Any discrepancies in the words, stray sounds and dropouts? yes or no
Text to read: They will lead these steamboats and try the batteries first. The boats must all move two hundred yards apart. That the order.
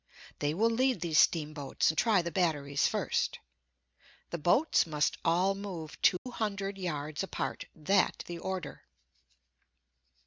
yes